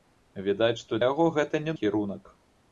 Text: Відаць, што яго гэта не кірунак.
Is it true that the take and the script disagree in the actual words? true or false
false